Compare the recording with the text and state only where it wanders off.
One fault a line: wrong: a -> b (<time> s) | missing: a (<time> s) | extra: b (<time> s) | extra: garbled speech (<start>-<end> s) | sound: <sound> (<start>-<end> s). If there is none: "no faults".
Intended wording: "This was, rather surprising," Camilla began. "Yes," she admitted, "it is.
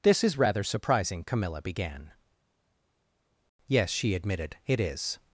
wrong: was -> is (0.2 s)